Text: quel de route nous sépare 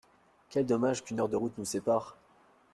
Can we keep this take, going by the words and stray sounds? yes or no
no